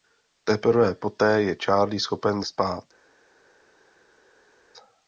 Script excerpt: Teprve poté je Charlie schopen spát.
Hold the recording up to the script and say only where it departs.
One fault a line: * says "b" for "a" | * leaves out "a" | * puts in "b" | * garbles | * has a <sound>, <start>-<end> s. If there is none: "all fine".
all fine